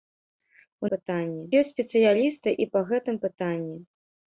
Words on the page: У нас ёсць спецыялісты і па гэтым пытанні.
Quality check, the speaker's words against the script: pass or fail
fail